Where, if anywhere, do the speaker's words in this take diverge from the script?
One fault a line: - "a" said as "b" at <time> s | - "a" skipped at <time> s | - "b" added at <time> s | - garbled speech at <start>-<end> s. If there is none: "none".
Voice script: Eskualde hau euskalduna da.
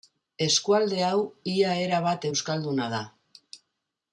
- "ia erabat" added at 1.6 s